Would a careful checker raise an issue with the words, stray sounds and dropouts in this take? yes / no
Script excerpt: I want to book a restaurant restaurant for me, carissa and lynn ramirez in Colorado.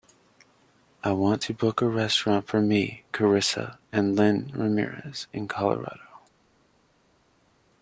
yes